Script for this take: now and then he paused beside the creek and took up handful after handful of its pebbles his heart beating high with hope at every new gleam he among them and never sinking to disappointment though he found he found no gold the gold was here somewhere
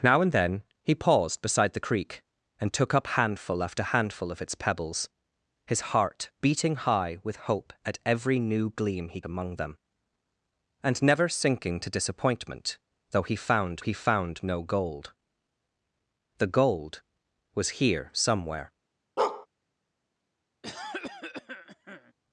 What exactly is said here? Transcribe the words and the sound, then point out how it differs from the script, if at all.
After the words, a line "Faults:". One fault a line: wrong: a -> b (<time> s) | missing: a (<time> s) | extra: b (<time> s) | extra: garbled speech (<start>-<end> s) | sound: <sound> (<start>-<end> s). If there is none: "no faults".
now and then he paused beside the creek and took up handful after handful of its pebbles his heart beating high with hope at every new gleam he among them and never sinking to disappointment though he found he found no gold the gold was here somewhere
Faults:
sound: bark (19.2-19.5 s)
sound: cough (20.6-22.1 s)